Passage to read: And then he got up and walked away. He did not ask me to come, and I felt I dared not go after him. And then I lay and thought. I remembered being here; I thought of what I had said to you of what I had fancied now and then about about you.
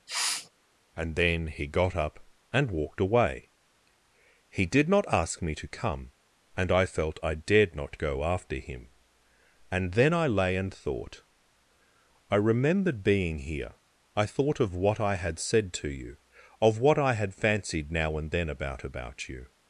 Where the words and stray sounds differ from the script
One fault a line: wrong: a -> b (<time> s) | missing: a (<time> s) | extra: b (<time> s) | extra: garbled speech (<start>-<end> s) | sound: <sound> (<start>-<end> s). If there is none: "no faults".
sound: sniff (0.1-0.5 s)